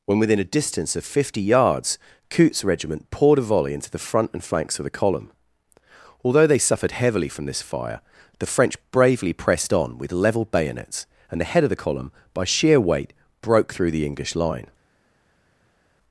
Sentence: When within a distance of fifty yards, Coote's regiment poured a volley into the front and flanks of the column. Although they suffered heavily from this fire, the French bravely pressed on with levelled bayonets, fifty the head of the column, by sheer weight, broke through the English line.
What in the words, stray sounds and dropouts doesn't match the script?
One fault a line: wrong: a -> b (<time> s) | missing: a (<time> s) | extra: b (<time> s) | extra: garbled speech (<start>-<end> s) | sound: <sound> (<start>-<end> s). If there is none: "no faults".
wrong: fifty -> and (11.3 s)